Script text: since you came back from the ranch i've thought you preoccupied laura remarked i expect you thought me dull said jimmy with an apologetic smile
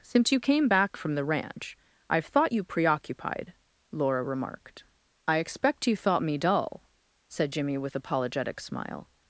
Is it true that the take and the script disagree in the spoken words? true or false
true